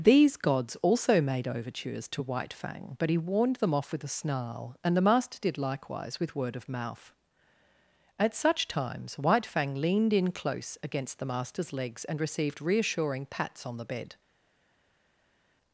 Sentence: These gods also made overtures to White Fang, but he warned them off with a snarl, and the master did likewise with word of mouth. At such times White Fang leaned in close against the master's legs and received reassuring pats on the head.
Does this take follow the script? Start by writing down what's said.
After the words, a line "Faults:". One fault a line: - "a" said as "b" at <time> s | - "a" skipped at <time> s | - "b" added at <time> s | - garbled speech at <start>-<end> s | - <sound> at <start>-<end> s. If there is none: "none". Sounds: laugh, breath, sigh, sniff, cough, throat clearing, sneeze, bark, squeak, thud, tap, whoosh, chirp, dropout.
These gods also made overtures to White Fang, but he warned them off with a snarl, and the master did likewise with word of mouth. At such times White Fang leaned in close against the master's legs and received reassuring pats on the bed.
Faults:
- "head" said as "bed" at 13.8 s